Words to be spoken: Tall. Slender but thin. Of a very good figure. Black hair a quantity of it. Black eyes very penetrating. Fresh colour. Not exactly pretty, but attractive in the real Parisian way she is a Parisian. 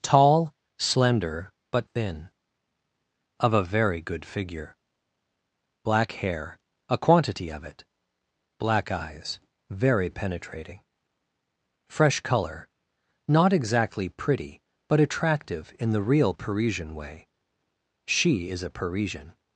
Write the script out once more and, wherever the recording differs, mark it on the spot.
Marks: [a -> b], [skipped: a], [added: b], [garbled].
Tall. Slender but thin. Of a very good figure. Black hair a quantity of it. Black eyes very penetrating. Fresh colour. Not exactly pretty, but attractive in the real Parisian way she is a Parisian.